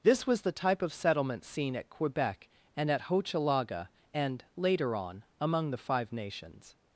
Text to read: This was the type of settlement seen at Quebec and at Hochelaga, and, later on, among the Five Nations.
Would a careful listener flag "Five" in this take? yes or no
no